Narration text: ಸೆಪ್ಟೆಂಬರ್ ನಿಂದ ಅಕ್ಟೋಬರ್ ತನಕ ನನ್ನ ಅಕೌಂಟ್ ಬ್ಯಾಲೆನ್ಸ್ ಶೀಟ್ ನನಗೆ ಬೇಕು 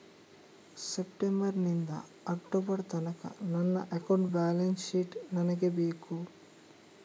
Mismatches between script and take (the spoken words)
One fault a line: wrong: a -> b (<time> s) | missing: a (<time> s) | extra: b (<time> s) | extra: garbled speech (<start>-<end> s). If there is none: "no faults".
no faults